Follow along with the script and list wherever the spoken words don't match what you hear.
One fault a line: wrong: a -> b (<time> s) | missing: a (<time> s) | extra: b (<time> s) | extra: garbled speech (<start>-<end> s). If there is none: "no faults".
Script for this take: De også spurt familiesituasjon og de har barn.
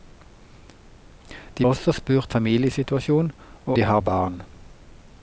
no faults